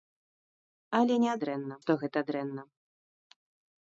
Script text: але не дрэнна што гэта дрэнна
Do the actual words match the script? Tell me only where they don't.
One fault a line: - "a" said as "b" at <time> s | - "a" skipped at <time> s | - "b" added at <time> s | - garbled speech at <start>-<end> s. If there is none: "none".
none